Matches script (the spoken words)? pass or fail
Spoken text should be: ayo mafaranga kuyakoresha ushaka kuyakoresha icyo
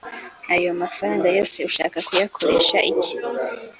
fail